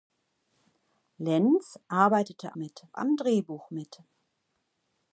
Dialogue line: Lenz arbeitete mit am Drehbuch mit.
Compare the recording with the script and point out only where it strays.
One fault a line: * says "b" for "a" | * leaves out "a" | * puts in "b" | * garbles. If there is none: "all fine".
all fine